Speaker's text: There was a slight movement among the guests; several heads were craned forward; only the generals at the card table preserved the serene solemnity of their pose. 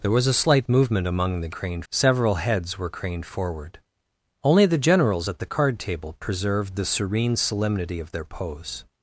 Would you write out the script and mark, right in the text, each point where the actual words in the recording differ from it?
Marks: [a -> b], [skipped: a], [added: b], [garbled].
There was a slight movement among the [guests; -> craned] several heads were craned forward; only the generals at the card table preserved the serene solemnity of their pose.